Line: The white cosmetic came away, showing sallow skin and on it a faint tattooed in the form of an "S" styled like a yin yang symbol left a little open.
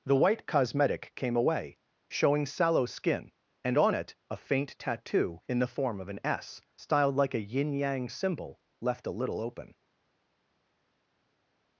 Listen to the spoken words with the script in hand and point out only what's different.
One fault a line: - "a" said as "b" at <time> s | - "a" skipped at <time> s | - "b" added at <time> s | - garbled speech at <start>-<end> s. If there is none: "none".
- "tattooed" said as "tattoo" at 4.8 s